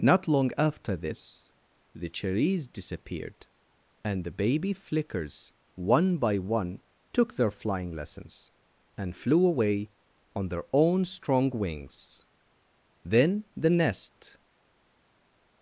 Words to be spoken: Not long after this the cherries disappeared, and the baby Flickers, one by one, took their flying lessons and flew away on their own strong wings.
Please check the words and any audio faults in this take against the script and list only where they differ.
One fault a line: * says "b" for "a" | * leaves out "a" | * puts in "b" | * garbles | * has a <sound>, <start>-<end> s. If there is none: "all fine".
* puts in "Then the nest"